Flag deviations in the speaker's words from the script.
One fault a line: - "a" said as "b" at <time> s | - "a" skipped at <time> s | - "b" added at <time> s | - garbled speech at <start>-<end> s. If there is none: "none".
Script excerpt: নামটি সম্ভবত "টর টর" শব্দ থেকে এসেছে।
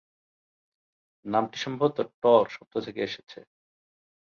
- "টর" skipped at 2.4 s